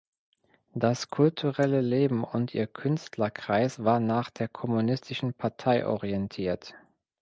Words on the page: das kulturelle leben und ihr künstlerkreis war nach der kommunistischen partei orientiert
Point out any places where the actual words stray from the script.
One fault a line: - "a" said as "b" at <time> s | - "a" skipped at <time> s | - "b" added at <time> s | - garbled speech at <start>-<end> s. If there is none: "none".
none